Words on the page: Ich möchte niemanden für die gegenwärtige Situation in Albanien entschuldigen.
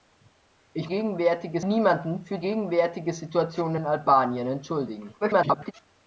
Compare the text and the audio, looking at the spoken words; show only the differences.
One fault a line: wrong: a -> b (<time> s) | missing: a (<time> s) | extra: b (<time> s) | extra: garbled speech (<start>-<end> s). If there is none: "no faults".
wrong: möchte -> gegenwärtige (0.9 s)
missing: die (2.4 s)
extra: garbled speech (5.2-5.7 s)